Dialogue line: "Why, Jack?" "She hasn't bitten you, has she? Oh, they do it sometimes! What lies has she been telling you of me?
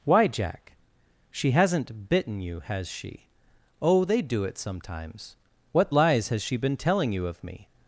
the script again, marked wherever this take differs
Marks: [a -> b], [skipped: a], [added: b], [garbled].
"Why, Jack?" "She hasn't bitten you, has she? Oh, they do it sometimes! What lies has she been telling you of me?